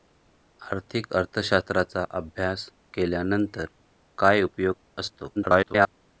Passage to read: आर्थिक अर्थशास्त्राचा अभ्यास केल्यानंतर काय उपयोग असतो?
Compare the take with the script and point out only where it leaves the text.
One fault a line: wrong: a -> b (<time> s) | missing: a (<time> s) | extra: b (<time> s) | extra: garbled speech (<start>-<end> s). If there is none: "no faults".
extra: garbled speech (5.4-5.9 s)